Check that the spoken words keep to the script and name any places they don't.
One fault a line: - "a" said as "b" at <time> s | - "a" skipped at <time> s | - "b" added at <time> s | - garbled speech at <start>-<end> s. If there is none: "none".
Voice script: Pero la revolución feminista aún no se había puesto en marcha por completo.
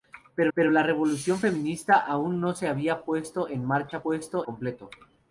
- "pero" added at 0.5 s
- "por" said as "puesto" at 4.0 s